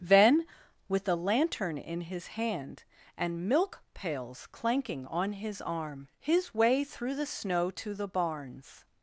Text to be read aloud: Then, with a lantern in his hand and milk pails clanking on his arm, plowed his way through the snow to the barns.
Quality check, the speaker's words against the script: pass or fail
fail